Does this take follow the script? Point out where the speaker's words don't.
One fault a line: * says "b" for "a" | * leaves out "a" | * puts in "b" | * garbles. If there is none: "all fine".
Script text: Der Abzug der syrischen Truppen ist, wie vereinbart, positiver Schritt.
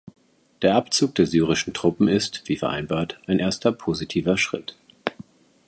* puts in "ein erster"